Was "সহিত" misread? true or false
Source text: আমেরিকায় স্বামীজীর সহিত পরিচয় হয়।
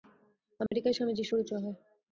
true